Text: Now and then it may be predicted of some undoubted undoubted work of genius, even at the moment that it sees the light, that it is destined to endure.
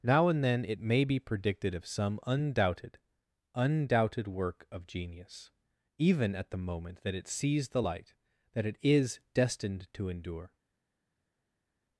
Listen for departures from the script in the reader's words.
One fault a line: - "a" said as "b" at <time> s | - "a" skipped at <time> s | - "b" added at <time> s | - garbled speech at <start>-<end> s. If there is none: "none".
none